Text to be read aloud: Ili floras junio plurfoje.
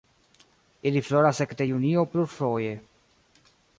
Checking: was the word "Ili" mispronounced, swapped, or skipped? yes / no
no